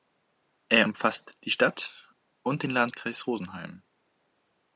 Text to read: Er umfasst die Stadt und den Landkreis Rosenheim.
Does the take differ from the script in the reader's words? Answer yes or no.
no